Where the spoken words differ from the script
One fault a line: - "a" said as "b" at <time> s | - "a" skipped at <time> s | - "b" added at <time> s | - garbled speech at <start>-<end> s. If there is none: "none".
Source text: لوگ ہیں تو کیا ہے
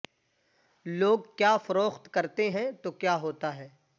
- "کیا فروخت کرتے" added at 1.4 s
- "ہوتا" added at 3.2 s